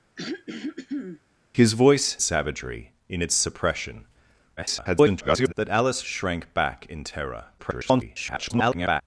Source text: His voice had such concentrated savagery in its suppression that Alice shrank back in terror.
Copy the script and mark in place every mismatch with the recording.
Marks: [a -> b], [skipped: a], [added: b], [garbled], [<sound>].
[throat clearing] His voice [skipped: had such concentrated] savagery in its suppression [garbled] that Alice shrank back in terror. [garbled]